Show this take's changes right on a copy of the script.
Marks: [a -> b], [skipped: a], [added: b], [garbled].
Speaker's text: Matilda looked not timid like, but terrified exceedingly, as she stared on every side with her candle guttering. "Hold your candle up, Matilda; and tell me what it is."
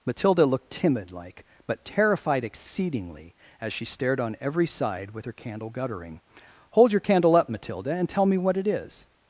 Matilda looked [skipped: not] timid like, but terrified exceedingly, as she stared on every side with her candle guttering. "Hold your candle up, Matilda; and tell me what it is."